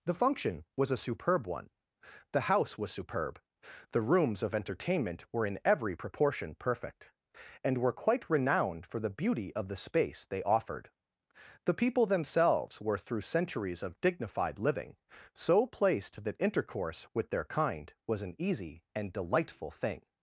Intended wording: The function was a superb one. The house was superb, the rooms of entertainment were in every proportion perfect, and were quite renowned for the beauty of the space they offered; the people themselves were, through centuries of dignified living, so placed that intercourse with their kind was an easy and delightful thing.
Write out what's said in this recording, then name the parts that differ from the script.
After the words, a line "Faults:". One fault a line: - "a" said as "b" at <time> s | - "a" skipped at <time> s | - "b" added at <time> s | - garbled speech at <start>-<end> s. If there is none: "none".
The function was a superb one. The house was superb, the rooms of entertainment were in every proportion perfect, and were quite renowned for the beauty of the space they offered; the people themselves were, through centuries of dignified living, so placed that intercourse with their kind was an easy and delightful thing.
Faults:
none